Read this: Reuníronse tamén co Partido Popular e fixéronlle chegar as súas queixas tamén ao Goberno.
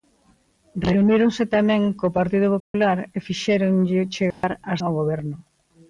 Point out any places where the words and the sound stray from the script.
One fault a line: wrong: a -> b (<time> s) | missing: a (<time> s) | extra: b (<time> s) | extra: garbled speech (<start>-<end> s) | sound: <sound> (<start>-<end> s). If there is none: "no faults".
sound: dropout (2.6-2.7 s)
sound: dropout (4.3-4.4 s)
missing: súas queixas tamén (4.8 s)